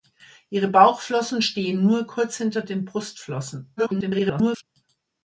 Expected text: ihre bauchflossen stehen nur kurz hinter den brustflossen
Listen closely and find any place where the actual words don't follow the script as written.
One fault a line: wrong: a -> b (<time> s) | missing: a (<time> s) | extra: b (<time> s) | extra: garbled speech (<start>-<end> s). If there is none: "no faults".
extra: garbled speech (3.8-4.6 s)